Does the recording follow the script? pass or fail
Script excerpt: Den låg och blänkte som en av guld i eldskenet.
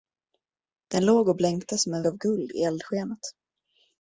pass